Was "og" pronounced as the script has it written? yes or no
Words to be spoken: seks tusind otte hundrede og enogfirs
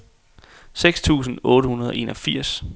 yes